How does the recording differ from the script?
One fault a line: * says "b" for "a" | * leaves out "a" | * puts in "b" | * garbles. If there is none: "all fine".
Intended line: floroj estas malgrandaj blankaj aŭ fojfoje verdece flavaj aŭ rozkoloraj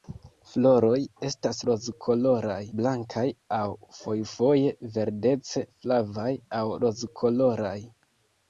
* says "rozkoloraj" for "malgrandaj"